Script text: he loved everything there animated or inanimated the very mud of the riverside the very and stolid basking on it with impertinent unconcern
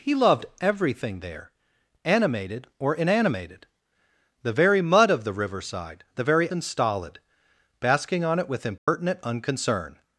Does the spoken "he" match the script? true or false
true